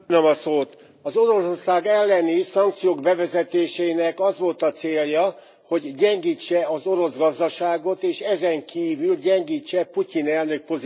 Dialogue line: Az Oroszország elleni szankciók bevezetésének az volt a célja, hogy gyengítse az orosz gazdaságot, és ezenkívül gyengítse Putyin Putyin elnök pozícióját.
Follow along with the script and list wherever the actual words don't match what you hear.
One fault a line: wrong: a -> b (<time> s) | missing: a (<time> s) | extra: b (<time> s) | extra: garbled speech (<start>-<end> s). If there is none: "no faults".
missing: Putyin (10.3 s)